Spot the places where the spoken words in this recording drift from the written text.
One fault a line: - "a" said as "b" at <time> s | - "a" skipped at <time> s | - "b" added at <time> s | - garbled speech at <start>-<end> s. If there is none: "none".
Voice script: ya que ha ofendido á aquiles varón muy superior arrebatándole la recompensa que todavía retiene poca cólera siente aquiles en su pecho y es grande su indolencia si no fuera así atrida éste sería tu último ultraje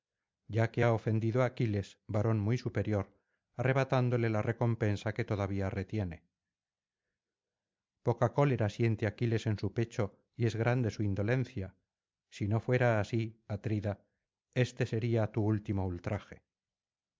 none